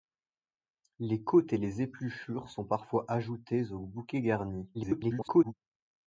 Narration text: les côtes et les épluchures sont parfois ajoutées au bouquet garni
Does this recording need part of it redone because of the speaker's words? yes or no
yes